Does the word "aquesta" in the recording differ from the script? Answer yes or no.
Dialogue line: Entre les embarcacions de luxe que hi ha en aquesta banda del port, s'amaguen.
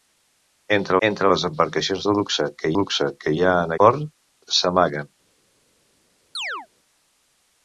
yes